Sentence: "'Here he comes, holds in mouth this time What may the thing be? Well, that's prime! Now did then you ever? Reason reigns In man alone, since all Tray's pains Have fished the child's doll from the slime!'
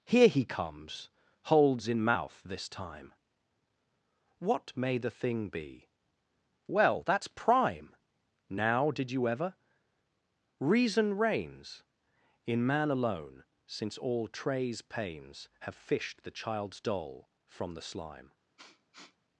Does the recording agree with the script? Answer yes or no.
no